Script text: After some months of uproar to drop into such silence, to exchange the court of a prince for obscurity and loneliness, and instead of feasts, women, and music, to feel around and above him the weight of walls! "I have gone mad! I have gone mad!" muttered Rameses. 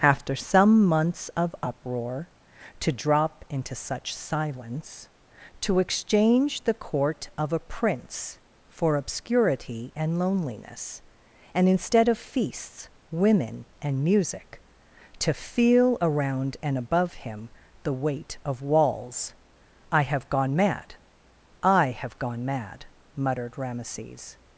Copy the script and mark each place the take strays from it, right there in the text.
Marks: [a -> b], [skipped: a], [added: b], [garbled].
After some months of uproar to drop into such silence, to exchange the court of a prince for obscurity and loneliness, and instead of feasts, women, and music, to feel around and above him the weight of walls! "I have gone mad! I have gone mad!" muttered Rameses.